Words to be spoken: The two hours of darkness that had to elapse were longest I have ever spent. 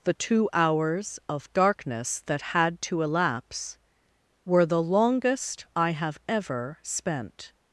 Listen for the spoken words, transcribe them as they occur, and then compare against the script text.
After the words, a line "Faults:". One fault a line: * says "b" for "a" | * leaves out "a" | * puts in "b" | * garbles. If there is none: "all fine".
The two hours of darkness that had to elapse were the longest I have ever spent.
Faults:
* puts in "the"